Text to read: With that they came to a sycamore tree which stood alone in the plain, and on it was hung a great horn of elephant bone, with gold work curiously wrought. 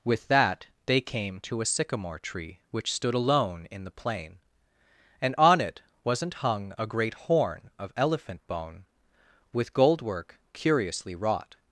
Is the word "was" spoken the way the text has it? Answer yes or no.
no